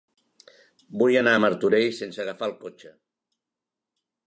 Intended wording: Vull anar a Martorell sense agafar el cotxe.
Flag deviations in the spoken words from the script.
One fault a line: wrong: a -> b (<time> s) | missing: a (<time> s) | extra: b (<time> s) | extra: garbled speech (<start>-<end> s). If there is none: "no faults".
no faults